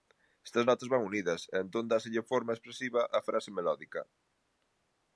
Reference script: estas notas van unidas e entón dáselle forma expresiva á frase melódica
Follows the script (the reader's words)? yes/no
yes